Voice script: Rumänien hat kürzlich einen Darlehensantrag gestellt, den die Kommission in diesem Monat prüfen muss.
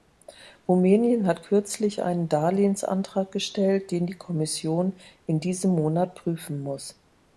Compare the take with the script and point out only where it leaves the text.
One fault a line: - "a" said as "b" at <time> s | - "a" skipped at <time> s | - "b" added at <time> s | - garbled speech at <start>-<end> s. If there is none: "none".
none